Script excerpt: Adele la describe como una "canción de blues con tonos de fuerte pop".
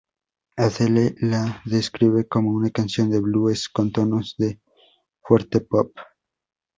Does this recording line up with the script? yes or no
yes